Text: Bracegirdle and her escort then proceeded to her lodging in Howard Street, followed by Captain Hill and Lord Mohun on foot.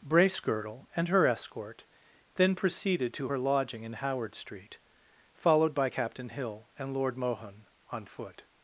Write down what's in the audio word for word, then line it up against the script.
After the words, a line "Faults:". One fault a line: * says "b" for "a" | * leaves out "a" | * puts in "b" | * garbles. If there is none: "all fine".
Bracegirdle and her escort then proceeded to her lodging in Howard Street, followed by Captain Hill and Lord Mohun on foot.
Faults:
all fine